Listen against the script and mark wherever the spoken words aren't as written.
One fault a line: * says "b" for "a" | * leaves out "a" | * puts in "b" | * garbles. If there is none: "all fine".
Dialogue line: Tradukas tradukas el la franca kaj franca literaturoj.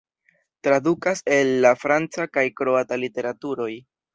* leaves out "tradukas"
* says "kroata" for "franca"